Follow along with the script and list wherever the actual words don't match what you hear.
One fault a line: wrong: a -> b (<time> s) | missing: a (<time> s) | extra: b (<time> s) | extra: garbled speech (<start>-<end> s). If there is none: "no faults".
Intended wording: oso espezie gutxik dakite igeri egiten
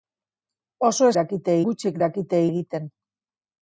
wrong: espezie -> dakite (1.2 s)
missing: igeri (2.4 s)